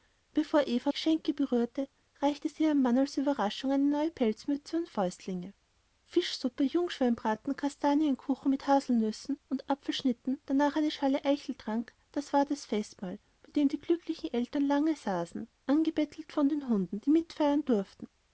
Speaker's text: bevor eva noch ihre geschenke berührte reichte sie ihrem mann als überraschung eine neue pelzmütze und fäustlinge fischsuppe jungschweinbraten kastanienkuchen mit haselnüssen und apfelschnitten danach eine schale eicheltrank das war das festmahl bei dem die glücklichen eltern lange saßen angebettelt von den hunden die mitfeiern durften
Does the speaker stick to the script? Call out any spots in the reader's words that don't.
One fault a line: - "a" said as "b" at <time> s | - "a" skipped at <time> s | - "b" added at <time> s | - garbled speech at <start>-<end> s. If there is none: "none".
- "noch ihre" skipped at 0.9 s